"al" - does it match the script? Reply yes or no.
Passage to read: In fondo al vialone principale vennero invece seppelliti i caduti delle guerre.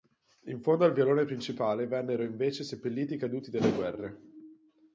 yes